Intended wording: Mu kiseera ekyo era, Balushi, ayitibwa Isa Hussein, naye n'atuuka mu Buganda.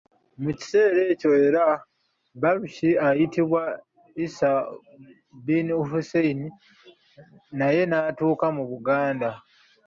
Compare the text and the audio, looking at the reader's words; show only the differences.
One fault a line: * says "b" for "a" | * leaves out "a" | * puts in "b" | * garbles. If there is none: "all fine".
* puts in "bin"